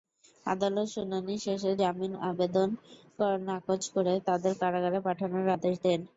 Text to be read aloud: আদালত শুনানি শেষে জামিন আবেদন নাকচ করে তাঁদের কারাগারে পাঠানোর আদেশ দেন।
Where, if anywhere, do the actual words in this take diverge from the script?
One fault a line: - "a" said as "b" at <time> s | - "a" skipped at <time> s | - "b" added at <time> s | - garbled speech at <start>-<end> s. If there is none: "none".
none